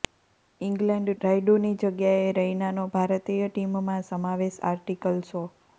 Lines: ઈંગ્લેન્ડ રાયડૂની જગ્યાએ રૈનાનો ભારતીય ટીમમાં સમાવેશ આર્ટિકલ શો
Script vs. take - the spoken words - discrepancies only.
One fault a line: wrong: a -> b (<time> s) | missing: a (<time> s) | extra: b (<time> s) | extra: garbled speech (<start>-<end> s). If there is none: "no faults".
no faults